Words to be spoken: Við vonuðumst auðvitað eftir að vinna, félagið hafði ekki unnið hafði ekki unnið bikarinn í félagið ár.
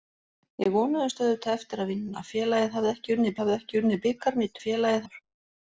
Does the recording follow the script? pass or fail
pass